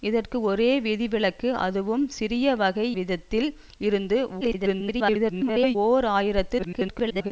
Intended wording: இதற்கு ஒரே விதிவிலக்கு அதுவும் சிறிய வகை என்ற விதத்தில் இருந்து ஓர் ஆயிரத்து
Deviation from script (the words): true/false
true